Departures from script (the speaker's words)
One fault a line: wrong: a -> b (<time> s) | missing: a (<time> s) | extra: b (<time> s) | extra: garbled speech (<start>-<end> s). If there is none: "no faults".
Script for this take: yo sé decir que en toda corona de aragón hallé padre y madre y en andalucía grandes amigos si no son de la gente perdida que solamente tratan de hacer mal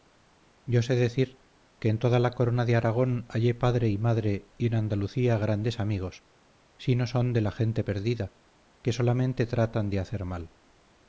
extra: la (2.2 s)